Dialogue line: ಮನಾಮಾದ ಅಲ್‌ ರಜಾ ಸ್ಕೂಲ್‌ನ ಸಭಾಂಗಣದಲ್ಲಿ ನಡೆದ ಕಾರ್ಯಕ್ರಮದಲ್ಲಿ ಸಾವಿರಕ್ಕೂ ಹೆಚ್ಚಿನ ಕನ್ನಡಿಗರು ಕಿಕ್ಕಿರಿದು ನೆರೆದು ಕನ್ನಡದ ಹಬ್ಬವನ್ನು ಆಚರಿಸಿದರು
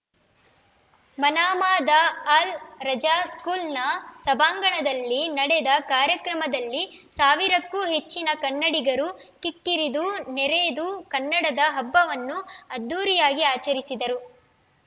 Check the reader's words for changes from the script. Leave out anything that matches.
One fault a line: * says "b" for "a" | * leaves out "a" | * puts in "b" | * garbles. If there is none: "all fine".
* puts in "ಅದ್ಧೂರಿಯಾಗಿ"